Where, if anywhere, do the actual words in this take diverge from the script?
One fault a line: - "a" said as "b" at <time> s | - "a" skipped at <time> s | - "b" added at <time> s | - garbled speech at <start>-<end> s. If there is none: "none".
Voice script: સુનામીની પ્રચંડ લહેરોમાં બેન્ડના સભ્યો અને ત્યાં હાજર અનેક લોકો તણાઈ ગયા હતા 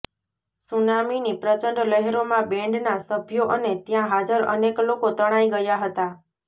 none